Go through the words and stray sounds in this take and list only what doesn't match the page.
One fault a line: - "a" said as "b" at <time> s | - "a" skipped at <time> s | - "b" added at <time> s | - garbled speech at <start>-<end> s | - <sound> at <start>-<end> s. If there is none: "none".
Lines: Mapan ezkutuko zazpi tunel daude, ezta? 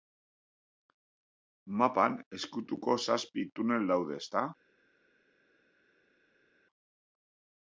none